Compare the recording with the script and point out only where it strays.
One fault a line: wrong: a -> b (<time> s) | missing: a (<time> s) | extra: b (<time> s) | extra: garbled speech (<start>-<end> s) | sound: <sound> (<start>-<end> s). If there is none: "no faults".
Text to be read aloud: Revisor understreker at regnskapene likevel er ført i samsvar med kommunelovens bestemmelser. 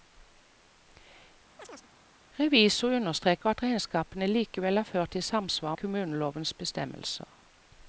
sound: chirp (1.6-1.9 s)
missing: med (5.8 s)